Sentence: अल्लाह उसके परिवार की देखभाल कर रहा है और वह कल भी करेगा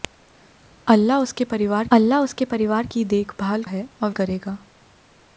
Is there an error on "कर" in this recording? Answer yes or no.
yes